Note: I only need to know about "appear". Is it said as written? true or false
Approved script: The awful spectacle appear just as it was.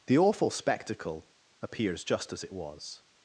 false